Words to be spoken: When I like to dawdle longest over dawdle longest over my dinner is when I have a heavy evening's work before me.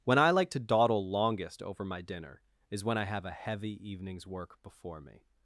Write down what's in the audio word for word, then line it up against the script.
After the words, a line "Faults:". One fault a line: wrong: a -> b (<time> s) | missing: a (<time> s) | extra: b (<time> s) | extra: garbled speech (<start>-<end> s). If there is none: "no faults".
When I like to dawdle longest over my dinner is when I have a heavy evening's work before me.
Faults:
missing: dawdle longest over (1.9 s)